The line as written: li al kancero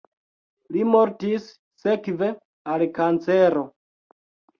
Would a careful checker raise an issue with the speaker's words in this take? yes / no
yes